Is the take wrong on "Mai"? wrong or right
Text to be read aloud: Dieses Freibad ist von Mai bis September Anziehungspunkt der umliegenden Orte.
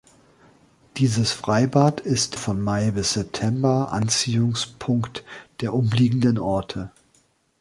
right